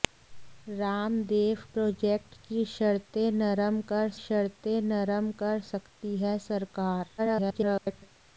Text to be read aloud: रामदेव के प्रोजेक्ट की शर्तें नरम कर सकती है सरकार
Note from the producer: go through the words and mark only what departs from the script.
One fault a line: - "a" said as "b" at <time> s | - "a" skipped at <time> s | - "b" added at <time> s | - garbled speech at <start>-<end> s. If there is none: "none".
- "के" skipped at 1.6 s
- "शर्तें नरम कर" added at 4.2 s
- garbled speech at 7.2-8.2 s